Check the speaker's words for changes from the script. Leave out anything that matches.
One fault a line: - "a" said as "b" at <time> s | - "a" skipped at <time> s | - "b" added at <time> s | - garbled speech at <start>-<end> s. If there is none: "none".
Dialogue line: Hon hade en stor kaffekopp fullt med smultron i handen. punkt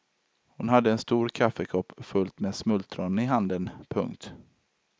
none